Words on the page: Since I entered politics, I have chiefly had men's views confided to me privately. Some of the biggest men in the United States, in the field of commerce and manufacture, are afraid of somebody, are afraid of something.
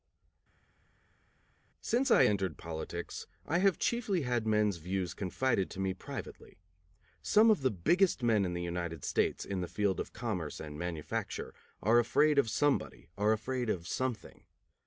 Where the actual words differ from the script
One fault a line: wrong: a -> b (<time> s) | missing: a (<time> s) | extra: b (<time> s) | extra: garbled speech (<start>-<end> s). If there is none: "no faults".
no faults